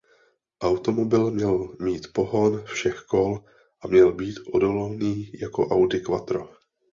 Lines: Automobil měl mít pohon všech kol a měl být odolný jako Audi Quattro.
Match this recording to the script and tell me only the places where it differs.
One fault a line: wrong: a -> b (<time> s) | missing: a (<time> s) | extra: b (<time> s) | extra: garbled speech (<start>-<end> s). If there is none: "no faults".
no faults